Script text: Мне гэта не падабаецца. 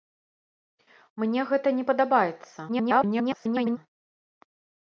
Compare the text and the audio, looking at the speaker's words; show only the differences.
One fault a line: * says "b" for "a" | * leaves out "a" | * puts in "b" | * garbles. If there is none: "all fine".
* garbles